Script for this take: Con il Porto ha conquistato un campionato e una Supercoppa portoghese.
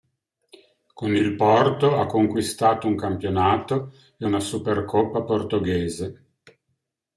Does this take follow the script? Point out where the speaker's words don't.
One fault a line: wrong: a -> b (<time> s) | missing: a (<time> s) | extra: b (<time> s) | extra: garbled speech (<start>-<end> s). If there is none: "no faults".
no faults